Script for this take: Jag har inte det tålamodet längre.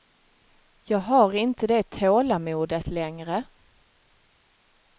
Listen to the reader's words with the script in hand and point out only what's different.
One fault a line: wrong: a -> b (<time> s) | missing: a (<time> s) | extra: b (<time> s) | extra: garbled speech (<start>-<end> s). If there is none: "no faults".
no faults